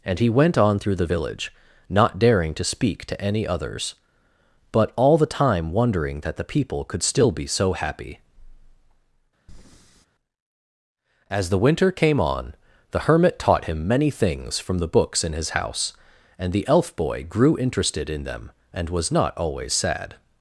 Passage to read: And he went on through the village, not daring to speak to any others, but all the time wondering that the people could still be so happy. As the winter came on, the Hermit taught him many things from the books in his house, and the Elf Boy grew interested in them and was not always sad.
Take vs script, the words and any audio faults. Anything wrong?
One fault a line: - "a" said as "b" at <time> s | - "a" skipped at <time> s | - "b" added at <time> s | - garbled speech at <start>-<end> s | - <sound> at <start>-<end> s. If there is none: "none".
- breath at 9.5-10.1 s